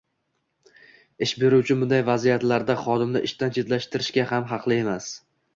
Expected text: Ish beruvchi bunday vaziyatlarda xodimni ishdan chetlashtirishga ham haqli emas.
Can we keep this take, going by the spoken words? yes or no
yes